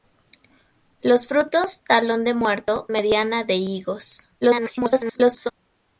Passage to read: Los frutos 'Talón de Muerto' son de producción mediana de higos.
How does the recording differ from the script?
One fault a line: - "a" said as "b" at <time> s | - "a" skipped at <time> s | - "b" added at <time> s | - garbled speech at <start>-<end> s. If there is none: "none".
- "son de producción" skipped at 2.9 s
- garbled speech at 4.4-5.5 s